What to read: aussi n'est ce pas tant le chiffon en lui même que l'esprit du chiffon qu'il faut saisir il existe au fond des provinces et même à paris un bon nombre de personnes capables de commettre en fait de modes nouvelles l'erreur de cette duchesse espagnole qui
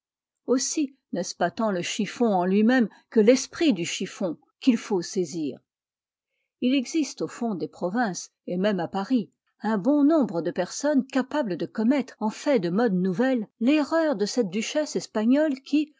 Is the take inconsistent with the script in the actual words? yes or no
no